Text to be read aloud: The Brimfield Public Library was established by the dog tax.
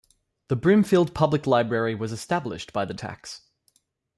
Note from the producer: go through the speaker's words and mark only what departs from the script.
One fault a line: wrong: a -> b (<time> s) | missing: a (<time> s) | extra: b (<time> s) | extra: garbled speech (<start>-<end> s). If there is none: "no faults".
missing: dog (2.9 s)